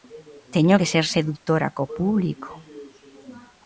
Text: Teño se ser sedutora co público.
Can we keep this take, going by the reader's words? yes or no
no